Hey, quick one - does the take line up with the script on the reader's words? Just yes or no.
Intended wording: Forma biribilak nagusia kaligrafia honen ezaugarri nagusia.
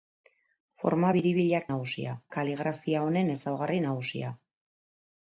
yes